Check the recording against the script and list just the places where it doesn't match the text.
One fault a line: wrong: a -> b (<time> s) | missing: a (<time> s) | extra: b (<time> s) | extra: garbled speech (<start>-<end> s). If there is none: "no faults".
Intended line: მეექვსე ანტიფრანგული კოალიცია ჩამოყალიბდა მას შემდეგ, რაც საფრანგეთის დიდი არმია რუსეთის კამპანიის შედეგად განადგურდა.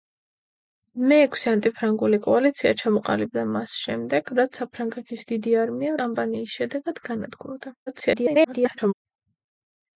missing: რუსეთის (5.9 s)
extra: garbled speech (7.9-8.9 s)